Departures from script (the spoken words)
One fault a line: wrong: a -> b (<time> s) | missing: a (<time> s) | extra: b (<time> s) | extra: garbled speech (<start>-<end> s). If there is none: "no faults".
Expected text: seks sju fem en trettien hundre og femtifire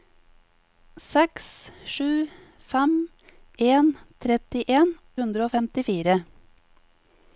no faults